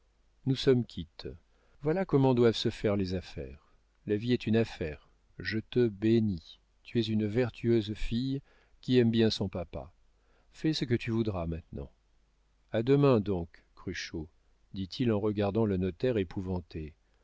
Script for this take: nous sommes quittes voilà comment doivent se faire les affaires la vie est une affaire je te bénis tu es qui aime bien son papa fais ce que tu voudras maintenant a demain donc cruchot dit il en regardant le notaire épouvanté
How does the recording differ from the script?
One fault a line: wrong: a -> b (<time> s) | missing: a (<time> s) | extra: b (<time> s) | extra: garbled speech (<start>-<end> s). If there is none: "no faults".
extra: une vertueuse fille (7.0 s)